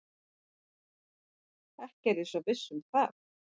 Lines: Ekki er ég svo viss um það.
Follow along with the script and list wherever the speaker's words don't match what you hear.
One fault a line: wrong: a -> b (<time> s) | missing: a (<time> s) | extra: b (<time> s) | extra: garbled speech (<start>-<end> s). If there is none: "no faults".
no faults